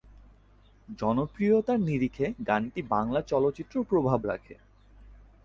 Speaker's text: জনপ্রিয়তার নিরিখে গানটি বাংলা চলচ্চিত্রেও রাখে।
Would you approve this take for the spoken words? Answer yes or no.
no